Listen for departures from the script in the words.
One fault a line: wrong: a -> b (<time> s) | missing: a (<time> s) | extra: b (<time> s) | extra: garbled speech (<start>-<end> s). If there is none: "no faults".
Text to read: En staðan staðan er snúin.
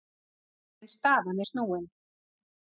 missing: staðan (1.4 s)